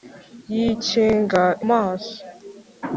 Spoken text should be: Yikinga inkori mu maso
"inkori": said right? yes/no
no